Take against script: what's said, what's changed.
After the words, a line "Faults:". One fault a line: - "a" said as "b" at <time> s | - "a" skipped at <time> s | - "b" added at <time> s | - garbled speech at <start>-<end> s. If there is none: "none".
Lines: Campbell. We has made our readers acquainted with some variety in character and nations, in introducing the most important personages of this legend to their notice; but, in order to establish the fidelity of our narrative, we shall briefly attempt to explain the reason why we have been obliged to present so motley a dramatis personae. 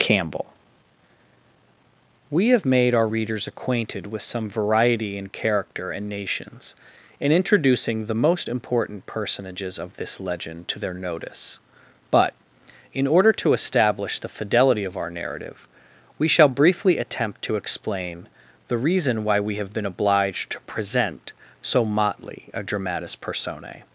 Campbell. We have made our readers acquainted with some variety in character and nations, in introducing the most important personages of this legend to their notice; but, in order to establish the fidelity of our narrative, we shall briefly attempt to explain the reason why we have been obliged to present so motley a dramatis personae.
Faults:
- "has" said as "have" at 2.5 s